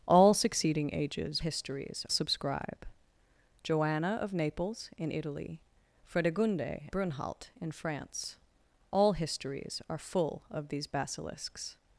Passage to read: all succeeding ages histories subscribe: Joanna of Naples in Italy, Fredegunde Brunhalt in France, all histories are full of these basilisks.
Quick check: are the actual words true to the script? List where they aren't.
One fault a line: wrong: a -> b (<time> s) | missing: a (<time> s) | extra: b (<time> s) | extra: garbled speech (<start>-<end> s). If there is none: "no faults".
no faults